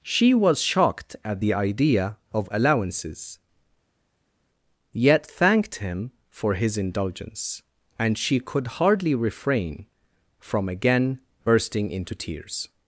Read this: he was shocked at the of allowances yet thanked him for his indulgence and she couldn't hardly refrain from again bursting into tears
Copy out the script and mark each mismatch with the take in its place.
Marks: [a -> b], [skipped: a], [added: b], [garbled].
[he -> she] was shocked at the [added: idea] of allowances yet thanked him for his indulgence and she [couldn't -> could] hardly refrain from again bursting into tears